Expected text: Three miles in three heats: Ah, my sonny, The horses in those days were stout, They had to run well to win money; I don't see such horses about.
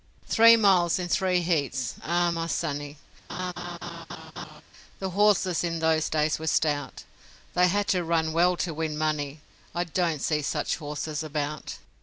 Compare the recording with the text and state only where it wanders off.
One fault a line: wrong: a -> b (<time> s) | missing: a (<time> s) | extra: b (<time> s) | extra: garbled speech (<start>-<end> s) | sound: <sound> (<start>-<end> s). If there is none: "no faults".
sound: laugh (3.3-4.6 s)